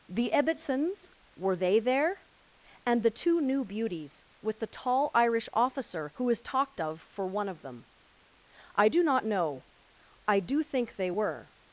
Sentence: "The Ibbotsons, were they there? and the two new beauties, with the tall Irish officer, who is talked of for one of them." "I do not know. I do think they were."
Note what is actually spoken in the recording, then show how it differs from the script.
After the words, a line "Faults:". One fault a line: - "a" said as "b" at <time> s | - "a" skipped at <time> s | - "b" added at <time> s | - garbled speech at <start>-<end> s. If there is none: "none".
"The Ibbotsons, were they there? and the two new beauties, with the tall Irish officer, who is talked of for one of them." "I do not know. I do think they were."
Faults:
none